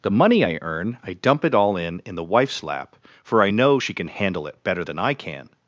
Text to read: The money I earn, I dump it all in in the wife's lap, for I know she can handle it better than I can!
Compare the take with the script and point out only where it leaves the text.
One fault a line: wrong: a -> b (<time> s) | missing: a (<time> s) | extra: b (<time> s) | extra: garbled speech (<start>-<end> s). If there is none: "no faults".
no faults